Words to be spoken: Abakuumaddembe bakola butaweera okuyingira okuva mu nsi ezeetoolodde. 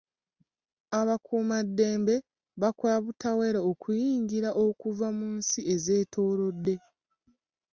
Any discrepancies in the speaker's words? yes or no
no